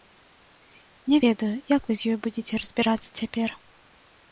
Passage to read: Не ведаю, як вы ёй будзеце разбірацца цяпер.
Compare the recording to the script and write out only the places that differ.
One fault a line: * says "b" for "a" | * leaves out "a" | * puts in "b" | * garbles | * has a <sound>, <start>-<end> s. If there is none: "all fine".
* puts in "з"